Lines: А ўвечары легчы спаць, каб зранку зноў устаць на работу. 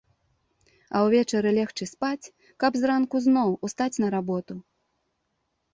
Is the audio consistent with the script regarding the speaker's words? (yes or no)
yes